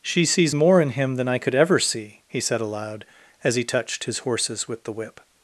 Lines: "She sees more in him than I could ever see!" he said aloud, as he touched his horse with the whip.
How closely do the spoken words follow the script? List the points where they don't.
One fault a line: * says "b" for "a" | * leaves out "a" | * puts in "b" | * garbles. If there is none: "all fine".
* says "horses" for "horse"